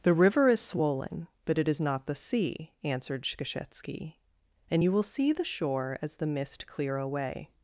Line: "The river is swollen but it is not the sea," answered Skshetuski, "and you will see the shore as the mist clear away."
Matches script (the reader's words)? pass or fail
pass